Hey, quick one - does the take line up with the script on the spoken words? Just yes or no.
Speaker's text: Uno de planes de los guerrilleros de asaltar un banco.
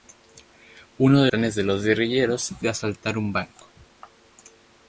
yes